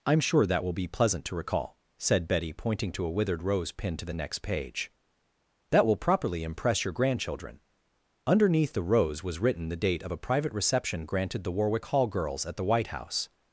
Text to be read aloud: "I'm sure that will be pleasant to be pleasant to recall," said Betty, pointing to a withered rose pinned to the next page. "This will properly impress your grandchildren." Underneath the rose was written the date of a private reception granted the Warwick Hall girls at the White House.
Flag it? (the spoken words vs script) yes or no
yes